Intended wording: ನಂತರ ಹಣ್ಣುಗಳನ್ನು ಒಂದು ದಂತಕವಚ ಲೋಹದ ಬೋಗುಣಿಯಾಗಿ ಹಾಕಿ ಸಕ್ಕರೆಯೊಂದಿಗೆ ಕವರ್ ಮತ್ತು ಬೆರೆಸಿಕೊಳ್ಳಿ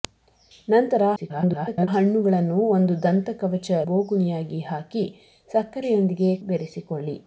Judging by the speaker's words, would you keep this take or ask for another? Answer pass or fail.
fail